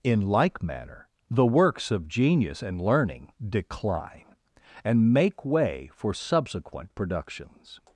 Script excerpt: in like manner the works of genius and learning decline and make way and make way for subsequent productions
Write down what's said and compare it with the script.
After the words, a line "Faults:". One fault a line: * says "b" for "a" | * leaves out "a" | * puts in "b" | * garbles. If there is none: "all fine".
in like manner the works of genius and learning decline and make way for subsequent productions
Faults:
* leaves out "and make way"